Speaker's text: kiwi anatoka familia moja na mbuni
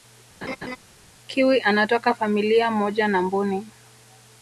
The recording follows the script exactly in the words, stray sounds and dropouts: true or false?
false